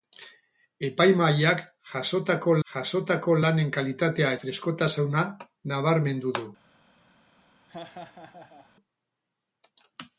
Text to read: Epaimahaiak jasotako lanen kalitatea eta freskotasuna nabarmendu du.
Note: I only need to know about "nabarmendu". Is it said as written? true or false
true